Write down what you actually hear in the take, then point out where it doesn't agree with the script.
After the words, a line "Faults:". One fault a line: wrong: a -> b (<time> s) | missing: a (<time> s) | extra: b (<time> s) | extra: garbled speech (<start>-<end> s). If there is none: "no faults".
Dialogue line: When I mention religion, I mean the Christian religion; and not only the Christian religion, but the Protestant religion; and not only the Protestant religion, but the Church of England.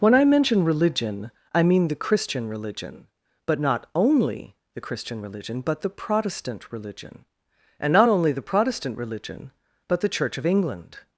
When I mention religion, I mean the Christian religion; but not only the Christian religion, but the Protestant religion; and not only the Protestant religion, but the Church of England.
Faults:
wrong: and -> but (3.5 s)